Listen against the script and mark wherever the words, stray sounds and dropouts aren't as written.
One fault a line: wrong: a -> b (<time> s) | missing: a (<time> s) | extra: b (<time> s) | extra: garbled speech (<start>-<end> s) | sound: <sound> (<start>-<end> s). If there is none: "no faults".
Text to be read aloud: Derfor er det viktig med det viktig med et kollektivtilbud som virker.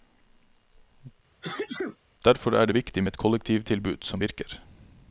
sound: sneeze (1.4-2.0 s)
missing: det viktig med (3.1 s)